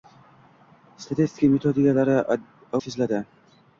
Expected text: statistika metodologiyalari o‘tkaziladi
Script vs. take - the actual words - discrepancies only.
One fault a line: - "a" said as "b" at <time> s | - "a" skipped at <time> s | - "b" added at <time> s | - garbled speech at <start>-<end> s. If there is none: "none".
none